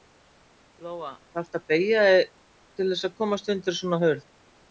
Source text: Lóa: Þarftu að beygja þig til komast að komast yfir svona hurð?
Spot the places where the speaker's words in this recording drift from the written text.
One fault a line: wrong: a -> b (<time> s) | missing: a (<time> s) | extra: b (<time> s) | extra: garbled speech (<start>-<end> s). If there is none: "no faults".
wrong: komast -> þess (2.9 s)
wrong: yfir -> undir (3.6 s)